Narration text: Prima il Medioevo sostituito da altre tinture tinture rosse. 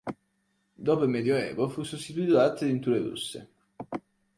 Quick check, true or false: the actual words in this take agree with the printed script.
false